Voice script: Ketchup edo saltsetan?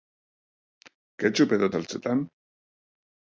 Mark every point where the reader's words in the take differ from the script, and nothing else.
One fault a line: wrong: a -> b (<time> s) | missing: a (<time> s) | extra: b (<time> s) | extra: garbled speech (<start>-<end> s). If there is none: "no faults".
no faults